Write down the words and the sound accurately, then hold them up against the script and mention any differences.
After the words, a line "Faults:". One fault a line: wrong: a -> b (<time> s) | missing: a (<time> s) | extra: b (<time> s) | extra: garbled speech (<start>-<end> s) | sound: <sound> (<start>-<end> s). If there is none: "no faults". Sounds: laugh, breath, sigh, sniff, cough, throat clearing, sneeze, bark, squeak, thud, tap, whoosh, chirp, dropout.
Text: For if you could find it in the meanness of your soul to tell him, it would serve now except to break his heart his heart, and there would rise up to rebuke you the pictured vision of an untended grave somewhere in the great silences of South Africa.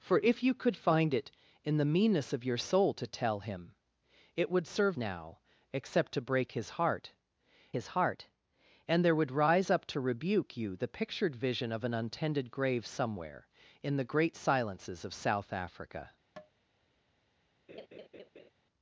For if you could find it in the meanness of your soul to tell him, it would serve now except to break his heart his heart, and there would rise up to rebuke you the pictured vision of an untended grave somewhere in the great silences of South Africa.
Faults:
sound: tap (16.4-16.5 s)
sound: laugh (17.7-18.5 s)